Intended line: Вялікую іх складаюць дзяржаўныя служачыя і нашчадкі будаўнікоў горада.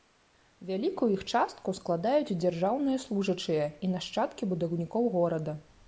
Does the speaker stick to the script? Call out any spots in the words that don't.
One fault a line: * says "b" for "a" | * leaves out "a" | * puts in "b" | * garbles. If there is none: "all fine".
* puts in "частку"